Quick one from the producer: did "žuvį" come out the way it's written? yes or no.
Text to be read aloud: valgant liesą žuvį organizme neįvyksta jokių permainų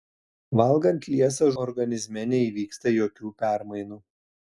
no